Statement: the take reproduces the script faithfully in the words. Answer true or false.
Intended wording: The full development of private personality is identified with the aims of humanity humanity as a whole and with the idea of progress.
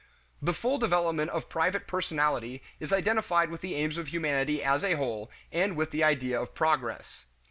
false